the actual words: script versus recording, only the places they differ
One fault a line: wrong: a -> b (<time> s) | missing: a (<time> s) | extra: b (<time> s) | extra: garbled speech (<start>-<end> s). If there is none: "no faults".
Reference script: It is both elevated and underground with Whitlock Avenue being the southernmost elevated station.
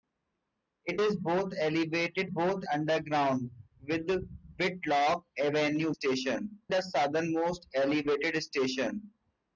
wrong: and -> both (2.3 s)
wrong: being -> station (5.9 s)